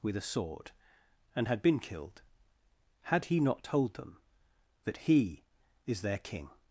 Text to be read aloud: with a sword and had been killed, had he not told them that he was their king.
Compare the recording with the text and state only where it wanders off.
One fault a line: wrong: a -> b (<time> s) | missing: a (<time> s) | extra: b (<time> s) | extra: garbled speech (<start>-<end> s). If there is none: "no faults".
wrong: was -> is (5.8 s)